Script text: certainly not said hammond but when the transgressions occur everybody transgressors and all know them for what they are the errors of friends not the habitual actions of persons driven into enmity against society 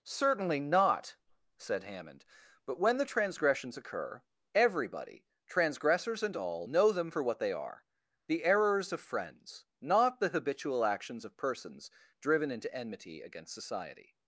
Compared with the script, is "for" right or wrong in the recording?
right